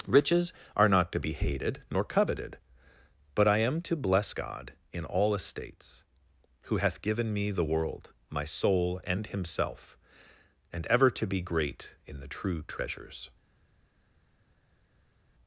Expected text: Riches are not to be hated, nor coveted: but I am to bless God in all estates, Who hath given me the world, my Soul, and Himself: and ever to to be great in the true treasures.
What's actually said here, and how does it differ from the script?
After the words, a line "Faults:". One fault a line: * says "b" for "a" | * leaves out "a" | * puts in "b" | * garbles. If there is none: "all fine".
Riches are not to be hated, nor coveted: but I am to bless God in all estates, Who hath given me the world, my Soul, and Himself: and ever to be great in the true treasures.
Faults:
* leaves out "to"